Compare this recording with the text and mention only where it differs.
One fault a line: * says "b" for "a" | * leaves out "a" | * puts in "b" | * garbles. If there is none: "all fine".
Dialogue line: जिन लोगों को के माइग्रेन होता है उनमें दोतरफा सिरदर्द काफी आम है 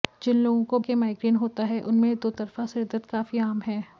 all fine